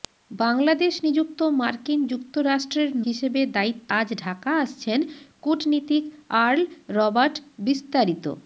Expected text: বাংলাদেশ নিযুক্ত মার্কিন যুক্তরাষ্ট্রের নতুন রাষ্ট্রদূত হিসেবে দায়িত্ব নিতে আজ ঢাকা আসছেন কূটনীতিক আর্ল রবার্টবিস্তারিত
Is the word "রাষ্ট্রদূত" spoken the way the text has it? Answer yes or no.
no